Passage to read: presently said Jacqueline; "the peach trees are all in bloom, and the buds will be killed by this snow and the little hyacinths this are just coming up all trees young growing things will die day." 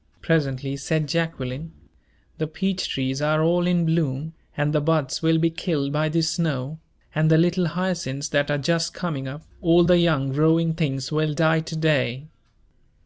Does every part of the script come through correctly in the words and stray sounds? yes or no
no